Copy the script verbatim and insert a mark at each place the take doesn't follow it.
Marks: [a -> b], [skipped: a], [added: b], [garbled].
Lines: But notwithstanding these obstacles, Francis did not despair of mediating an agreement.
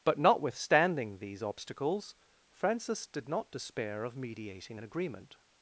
But notwithstanding these obstacles, Francis did not despair of mediating an agreement.